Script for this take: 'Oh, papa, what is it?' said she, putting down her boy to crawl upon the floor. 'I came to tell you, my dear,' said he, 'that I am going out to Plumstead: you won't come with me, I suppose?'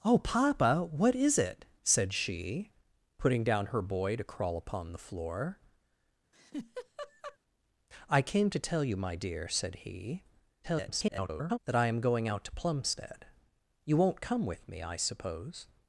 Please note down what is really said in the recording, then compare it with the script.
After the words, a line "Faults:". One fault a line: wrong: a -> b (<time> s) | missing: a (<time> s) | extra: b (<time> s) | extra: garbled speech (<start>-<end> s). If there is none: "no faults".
'Oh, papa, what is it?' said she, putting down her boy to crawl upon the floor. 'I came to tell you, my dear,' said he, [garbled] 'that I am going out to Plumstead: you won't come with me, I suppose?'
Faults:
extra: garbled speech (10.6-11.6 s)